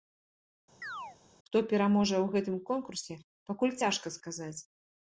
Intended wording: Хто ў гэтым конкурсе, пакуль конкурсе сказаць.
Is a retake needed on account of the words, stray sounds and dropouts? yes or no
yes